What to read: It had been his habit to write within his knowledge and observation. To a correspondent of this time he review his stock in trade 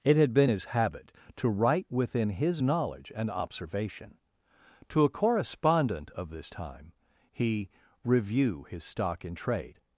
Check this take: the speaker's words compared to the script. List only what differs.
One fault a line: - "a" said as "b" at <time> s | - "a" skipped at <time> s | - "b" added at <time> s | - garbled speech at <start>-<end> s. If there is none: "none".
none